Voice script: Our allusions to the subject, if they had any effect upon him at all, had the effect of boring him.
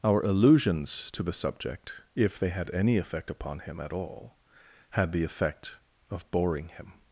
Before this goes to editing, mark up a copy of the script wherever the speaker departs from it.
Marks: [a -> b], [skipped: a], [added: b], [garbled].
Our allusions to the subject, if they had any effect upon him at all, had the effect of boring him.